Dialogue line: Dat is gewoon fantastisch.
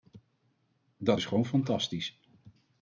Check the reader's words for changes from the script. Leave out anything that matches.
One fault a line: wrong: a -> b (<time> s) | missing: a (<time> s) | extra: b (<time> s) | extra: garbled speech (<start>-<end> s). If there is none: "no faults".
no faults